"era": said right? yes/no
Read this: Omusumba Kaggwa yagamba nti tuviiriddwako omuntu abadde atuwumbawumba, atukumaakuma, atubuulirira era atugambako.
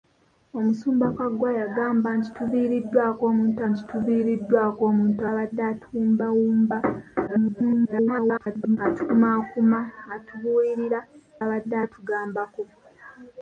no